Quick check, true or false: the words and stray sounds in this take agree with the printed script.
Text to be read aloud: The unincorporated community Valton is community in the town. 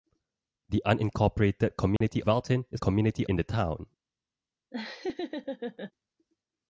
false